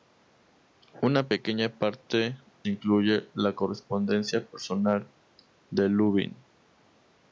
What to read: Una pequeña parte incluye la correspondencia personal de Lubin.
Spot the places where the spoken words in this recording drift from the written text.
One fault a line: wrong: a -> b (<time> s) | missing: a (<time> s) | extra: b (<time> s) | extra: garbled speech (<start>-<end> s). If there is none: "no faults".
no faults